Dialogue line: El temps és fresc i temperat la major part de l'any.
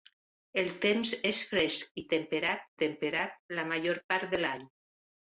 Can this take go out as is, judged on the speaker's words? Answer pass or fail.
fail